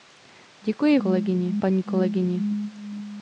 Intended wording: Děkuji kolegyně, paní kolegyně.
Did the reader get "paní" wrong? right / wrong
right